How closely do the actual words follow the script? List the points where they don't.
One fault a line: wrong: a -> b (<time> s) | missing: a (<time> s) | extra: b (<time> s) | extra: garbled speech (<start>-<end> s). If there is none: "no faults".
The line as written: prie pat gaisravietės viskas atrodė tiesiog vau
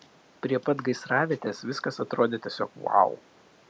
no faults